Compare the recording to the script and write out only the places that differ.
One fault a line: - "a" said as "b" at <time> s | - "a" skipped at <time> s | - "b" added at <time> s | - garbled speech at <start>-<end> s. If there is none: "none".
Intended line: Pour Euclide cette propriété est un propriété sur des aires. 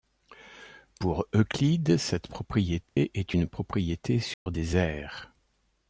- "un" said as "une" at 3.3 s